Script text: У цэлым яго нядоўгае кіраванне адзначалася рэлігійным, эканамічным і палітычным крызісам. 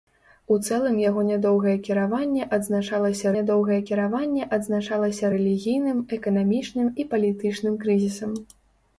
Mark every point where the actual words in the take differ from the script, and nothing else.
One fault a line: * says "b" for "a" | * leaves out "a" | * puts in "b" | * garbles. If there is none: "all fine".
* puts in "нядоўгае кіраванне адзначалася"